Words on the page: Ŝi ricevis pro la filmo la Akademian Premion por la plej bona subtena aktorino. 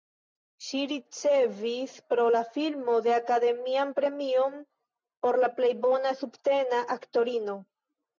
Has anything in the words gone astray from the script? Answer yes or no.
no